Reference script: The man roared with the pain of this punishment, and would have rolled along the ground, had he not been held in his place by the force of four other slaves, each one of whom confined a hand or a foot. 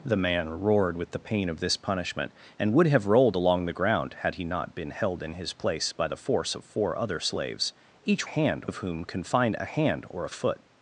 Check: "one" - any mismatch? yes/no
yes